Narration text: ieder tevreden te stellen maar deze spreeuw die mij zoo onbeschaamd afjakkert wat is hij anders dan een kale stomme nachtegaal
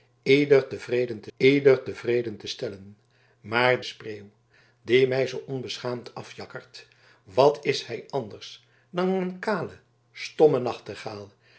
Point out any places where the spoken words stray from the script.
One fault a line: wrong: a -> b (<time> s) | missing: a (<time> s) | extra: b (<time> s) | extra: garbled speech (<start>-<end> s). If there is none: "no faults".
extra: ieder tevreden te (1.4 s)
missing: deze (3.8 s)